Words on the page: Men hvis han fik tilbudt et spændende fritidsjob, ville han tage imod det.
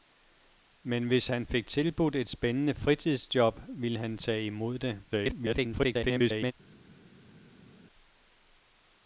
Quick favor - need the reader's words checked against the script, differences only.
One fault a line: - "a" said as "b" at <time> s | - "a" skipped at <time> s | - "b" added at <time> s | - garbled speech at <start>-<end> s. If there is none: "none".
- garbled speech at 5.1-6.5 s